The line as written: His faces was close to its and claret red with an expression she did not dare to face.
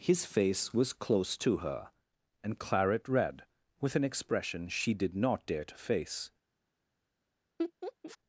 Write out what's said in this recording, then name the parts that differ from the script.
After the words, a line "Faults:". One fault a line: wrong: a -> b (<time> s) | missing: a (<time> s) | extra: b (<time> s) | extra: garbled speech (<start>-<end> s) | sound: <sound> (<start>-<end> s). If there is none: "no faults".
His face was close to her and claret red with an expression she did not dare to face.
Faults:
wrong: faces -> face (0.2 s)
wrong: its -> her (1.6 s)
sound: laugh (7.6-8.2 s)